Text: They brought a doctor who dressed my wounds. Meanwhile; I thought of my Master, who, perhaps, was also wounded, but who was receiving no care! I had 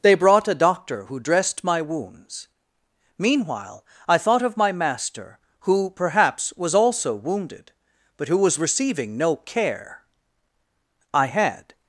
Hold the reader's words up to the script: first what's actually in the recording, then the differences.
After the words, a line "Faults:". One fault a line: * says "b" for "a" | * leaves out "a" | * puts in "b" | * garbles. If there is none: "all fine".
They brought a doctor who dressed my wounds. Meanwhile; I thought of my Master, who, perhaps, was also wounded, but who was receiving no care! I had
Faults:
all fine